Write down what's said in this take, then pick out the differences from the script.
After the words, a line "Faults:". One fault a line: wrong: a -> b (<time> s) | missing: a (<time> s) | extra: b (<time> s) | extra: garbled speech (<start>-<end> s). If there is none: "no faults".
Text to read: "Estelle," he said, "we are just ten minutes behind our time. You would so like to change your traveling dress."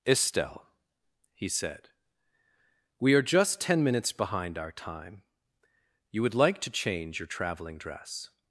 "Estelle," he said, "we are just ten minutes behind our time. You would like to change your traveling dress."
Faults:
missing: so (6.3 s)